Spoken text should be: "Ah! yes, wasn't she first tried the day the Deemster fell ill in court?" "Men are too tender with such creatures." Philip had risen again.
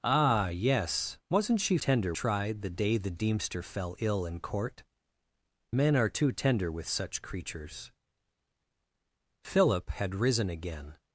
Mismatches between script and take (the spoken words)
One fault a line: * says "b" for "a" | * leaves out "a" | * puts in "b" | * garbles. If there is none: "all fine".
* says "tender" for "first"